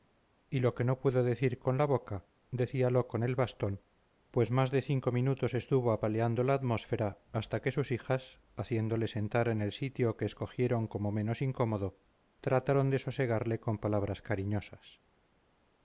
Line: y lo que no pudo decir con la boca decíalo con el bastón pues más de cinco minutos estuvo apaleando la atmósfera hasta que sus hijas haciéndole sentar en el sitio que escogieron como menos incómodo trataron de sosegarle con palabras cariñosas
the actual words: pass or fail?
pass